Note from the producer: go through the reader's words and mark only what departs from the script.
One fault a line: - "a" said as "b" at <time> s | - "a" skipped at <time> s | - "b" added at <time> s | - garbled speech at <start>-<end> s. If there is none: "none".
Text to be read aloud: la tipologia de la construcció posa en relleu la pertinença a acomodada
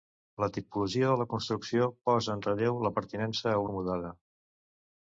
none